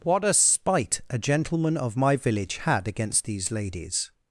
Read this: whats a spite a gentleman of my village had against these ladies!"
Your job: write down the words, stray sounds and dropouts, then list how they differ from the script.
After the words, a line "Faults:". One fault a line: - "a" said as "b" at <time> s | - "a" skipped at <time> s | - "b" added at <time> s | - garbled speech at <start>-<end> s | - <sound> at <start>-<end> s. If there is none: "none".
what a spite a gentleman of my village had against these ladies!"
Faults:
- "whats" said as "what" at 0.0 s